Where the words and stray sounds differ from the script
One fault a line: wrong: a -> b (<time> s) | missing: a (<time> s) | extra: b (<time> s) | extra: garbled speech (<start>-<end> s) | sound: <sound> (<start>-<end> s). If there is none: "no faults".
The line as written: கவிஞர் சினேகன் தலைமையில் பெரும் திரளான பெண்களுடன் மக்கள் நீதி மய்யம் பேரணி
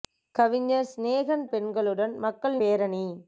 missing: தலைமையில் பெரும் திரளான (1.4 s)
missing: நீதி மய்யம் (2.6 s)